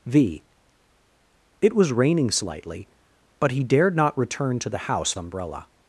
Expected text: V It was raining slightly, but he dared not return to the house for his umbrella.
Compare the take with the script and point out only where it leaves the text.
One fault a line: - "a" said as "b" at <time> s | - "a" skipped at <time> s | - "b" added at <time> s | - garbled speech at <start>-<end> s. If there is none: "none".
- "for his" skipped at 5.1 s